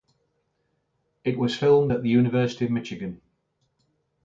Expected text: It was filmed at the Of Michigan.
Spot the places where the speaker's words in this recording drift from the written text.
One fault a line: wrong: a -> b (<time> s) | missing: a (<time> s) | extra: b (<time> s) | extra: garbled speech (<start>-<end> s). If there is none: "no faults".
extra: University (2.1 s)